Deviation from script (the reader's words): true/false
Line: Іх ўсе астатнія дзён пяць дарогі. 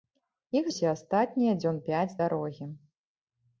false